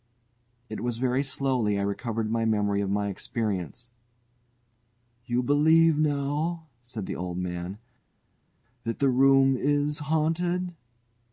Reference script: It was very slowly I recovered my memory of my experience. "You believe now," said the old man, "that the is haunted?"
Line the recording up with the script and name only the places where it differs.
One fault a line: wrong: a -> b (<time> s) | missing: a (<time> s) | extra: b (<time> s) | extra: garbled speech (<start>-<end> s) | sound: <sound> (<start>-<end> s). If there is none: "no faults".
extra: room (9.1 s)